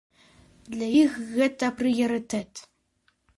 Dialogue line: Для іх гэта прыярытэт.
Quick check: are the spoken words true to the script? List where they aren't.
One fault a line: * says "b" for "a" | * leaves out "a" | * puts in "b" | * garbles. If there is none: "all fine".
all fine